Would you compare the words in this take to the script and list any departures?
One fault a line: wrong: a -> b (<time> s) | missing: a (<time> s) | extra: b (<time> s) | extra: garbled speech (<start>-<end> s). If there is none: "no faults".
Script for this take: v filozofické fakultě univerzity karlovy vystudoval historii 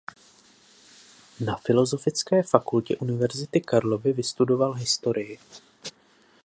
wrong: v -> na (1.4 s)